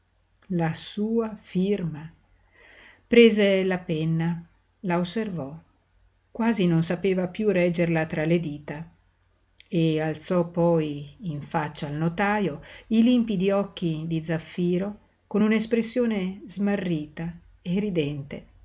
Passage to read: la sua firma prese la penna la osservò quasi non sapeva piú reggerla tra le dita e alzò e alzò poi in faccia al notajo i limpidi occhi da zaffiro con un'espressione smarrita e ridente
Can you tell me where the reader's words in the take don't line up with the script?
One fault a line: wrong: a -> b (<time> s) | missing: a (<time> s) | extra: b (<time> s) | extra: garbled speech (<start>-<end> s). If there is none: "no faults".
missing: e alzò (10.5 s)
wrong: da -> di (14.1 s)